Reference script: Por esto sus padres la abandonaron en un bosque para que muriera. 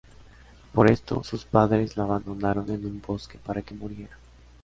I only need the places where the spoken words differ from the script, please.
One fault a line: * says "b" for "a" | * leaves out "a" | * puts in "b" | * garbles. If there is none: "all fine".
all fine